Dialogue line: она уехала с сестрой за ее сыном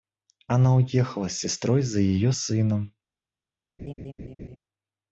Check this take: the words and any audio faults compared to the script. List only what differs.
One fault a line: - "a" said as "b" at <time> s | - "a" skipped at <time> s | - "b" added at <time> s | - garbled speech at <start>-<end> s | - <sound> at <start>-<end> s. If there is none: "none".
- laugh at 3.8-4.6 s